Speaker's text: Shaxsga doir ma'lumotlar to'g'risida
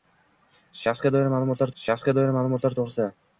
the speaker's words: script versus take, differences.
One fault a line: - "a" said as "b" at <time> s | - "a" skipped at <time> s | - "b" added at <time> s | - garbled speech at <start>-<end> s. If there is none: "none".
- "shaxsga doir ma'lumotlar" added at 1.8 s